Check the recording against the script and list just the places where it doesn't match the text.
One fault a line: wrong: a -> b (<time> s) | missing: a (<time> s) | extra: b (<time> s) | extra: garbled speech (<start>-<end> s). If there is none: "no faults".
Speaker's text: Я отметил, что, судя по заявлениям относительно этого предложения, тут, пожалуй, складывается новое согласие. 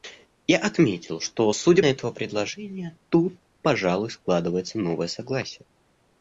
missing: по заявлениям относительно (1.8 s)